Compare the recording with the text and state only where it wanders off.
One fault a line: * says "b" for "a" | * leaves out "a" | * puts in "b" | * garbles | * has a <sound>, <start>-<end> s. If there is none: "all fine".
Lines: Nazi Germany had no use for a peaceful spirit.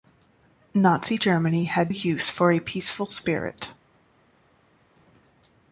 * leaves out "no"